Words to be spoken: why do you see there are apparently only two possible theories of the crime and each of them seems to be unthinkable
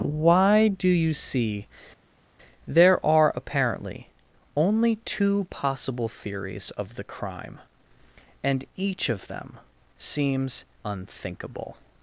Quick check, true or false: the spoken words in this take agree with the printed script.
false